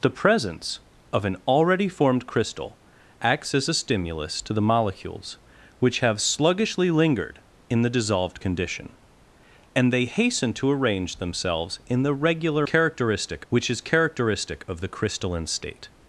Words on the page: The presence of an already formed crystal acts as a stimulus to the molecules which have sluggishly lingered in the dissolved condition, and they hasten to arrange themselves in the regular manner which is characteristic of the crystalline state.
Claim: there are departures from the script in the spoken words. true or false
true